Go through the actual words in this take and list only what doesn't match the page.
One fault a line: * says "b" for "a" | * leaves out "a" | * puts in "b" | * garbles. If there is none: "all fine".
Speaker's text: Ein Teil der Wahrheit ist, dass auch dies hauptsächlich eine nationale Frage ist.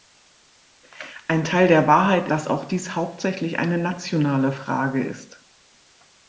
* leaves out "ist"